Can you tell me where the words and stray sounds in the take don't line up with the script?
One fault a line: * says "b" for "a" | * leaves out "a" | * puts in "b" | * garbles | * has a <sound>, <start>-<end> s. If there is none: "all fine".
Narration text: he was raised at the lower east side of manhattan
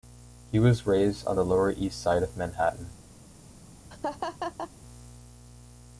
* says "on" for "at"
* has a laugh, 3.9-4.7 s